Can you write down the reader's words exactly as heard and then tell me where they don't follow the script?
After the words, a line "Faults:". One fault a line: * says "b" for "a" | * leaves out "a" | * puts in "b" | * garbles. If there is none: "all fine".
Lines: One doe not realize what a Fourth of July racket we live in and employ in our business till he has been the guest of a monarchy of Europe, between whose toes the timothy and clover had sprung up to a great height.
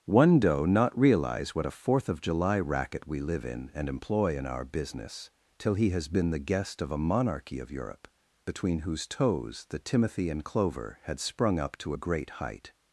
One doe not realize what a Fourth of July racket we live in and employ in our business till he has been the guest of a monarchy of Europe, between whose toes the timothy and clover had sprung up to a great height.
Faults:
all fine